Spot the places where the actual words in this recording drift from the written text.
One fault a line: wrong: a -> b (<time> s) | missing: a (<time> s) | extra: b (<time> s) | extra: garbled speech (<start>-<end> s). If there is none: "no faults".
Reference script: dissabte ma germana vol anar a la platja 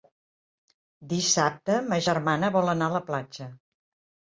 no faults